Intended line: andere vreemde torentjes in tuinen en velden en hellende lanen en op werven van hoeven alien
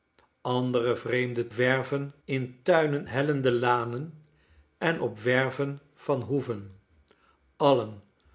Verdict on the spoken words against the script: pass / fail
fail